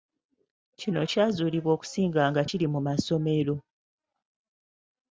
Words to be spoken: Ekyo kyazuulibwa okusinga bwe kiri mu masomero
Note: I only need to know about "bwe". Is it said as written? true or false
false